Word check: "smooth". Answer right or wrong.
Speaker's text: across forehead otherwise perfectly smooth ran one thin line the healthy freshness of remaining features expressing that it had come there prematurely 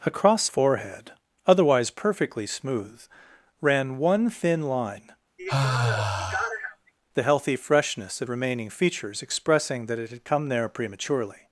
right